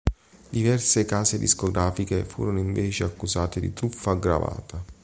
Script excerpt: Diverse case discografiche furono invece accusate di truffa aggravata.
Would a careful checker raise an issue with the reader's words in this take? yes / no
no